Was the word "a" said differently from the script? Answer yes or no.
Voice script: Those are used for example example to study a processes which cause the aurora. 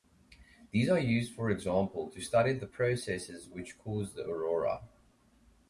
yes